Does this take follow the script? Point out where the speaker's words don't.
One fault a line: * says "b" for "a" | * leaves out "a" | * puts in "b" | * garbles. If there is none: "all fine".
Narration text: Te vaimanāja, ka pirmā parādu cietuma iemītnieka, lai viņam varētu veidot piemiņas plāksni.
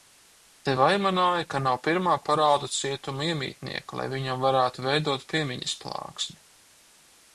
* puts in "nav"